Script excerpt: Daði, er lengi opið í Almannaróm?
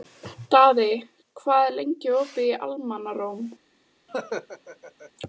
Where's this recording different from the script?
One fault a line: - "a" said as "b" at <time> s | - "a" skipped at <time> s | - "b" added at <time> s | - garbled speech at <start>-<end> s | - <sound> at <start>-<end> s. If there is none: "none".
- "hvað" added at 1.4 s
- laugh at 4.1-5.1 s